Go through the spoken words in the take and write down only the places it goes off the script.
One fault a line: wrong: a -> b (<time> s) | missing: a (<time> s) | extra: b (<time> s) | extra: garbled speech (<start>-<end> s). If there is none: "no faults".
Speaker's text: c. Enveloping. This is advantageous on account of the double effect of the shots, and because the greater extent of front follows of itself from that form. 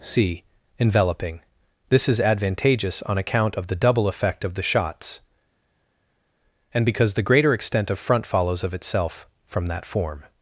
no faults